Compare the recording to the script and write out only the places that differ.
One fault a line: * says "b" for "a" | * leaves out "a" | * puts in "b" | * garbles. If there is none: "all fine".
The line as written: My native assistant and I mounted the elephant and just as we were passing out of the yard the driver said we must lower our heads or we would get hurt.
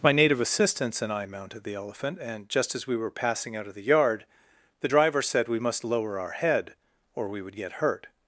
* says "assistants" for "assistant"
* says "head" for "heads"